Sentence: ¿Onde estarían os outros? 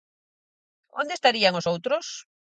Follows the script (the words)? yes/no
yes